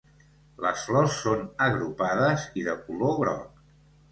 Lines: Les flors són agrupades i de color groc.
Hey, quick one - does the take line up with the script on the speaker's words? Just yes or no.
yes